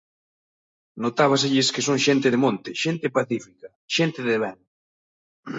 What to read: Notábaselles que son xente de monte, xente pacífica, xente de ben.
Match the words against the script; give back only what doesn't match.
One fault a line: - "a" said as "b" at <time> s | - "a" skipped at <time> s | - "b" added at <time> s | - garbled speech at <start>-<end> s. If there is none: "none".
none